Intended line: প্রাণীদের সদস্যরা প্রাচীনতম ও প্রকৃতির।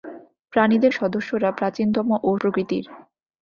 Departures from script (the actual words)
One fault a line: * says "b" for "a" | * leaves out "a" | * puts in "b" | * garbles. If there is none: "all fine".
all fine